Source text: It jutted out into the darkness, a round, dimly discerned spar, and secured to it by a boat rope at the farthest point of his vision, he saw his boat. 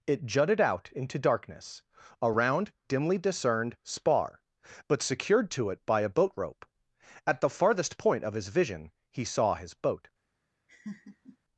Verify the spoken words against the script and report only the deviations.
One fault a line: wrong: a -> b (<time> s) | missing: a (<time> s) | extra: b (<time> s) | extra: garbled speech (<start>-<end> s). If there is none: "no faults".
missing: the (1.2 s)
wrong: and -> but (4.9 s)